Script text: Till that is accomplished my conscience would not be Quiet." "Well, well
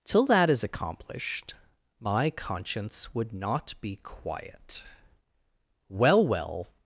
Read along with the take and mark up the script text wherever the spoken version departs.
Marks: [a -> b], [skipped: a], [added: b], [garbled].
Till that is accomplished my conscience would not be Quiet." "Well, well